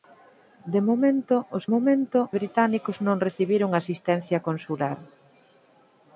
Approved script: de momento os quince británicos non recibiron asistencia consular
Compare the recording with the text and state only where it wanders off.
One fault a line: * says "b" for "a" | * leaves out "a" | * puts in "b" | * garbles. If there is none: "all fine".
* says "momento" for "quince"